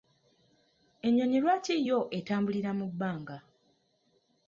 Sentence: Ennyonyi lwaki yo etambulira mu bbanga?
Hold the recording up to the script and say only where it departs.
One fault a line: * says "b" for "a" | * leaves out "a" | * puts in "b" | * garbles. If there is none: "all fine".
all fine